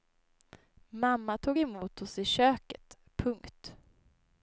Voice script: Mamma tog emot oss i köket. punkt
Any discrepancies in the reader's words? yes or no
no